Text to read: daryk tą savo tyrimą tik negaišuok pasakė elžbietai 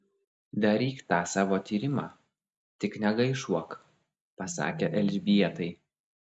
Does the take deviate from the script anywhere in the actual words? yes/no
no